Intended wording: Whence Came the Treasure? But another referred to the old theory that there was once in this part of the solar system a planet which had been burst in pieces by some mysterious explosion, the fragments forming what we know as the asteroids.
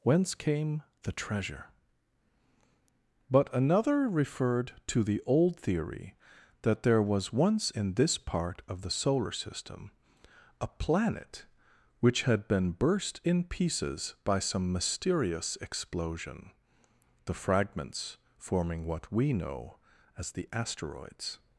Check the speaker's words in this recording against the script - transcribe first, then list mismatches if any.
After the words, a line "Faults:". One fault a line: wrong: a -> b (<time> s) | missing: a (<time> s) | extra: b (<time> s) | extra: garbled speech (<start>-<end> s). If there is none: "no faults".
Whence Came the Treasure? But another referred to the old theory that there was once in this part of the solar system a planet which had been burst in pieces by some mysterious explosion, the fragments forming what we know as the asteroids.
Faults:
no faults